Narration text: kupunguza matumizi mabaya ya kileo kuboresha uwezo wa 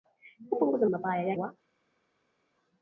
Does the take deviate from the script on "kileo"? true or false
true